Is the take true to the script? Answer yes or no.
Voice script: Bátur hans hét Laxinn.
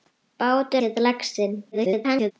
no